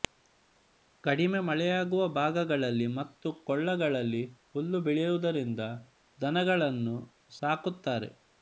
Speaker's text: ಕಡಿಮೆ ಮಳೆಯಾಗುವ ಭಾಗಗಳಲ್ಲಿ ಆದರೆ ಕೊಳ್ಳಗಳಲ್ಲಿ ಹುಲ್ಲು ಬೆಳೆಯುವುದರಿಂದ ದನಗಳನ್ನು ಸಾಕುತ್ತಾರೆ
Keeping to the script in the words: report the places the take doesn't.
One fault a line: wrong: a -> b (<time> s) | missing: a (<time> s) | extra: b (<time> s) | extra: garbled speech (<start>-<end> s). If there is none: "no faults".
wrong: ಆದರೆ -> ಮತ್ತು (3.0 s)